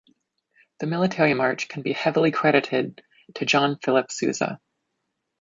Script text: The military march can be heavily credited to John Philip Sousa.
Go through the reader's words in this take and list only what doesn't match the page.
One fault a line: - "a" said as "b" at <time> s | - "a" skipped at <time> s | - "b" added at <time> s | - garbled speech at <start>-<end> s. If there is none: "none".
none